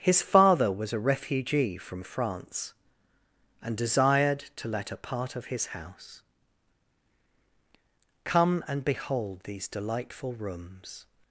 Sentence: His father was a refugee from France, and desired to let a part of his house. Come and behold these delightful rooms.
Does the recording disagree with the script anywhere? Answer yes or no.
no